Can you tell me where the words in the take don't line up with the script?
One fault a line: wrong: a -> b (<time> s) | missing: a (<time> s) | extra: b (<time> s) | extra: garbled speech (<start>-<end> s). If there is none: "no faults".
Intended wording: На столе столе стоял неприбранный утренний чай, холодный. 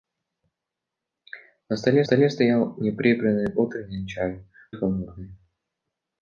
no faults